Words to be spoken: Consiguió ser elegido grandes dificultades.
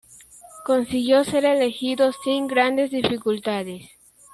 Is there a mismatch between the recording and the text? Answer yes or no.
yes